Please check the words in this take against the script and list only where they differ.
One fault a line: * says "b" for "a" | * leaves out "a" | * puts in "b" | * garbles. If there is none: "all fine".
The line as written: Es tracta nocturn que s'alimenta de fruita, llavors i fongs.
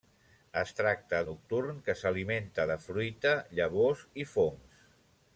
all fine